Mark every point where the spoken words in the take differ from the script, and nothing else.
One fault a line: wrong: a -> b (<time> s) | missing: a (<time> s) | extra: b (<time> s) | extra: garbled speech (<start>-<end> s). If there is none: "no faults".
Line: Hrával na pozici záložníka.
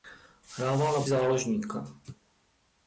missing: pozici (1.1 s)